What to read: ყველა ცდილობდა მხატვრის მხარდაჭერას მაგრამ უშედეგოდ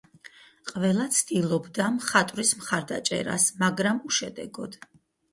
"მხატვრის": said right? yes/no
yes